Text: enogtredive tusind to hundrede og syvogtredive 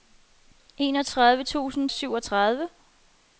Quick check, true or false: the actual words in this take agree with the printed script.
false